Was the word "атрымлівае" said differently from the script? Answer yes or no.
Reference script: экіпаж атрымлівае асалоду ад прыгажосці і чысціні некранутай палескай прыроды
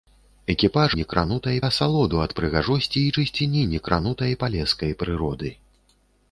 yes